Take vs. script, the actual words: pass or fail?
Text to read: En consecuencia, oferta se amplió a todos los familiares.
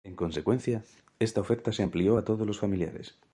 fail